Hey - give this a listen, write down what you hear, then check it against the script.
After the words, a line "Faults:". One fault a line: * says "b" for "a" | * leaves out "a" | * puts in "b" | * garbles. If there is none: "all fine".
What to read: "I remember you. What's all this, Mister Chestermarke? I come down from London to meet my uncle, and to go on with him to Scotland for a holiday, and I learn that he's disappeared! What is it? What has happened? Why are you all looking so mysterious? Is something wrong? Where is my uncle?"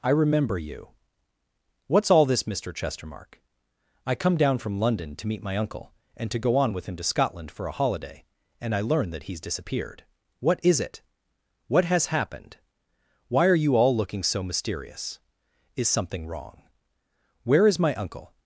"I remember you. What's all this, Mister Chestermarke? I come down from London to meet my uncle, and to go on with him to Scotland for a holiday, and I learn that he's disappeared! What is it? What has happened? Why are you all looking so mysterious? Is something wrong? Where is my uncle?"
Faults:
all fine